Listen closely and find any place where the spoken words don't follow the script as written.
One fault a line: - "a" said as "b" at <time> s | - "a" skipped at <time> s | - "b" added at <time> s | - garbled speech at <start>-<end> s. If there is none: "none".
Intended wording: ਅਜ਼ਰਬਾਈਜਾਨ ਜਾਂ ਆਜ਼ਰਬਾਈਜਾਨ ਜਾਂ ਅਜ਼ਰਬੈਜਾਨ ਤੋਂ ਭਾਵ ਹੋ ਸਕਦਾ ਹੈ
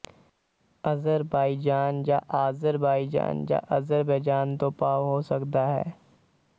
none